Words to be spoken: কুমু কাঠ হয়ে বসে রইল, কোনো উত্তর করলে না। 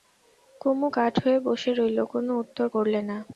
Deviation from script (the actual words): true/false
false